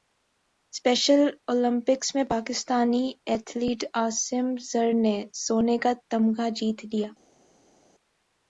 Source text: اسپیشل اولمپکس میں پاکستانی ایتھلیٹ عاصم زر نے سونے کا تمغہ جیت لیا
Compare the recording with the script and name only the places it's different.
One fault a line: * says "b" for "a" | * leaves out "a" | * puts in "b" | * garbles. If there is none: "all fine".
all fine